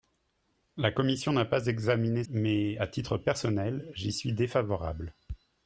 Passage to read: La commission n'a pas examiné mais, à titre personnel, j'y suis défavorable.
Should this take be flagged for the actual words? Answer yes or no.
no